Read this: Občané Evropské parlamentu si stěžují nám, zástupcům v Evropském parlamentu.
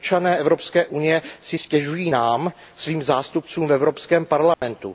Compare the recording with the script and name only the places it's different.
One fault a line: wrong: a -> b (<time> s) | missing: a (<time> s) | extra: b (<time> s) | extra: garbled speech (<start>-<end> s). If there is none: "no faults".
wrong: parlamentu -> unie (0.8 s)
extra: svým (2.8 s)